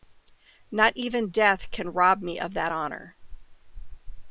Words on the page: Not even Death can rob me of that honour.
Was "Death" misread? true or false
false